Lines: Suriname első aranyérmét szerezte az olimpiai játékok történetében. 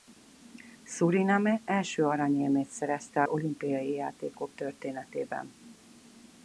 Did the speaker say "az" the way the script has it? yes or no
no